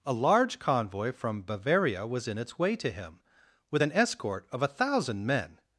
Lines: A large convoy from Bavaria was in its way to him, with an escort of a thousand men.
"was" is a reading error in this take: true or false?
false